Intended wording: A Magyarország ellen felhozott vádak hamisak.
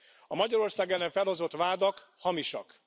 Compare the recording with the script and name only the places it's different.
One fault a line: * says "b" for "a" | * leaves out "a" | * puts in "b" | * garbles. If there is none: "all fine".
all fine